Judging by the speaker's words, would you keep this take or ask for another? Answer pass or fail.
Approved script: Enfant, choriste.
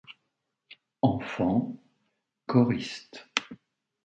pass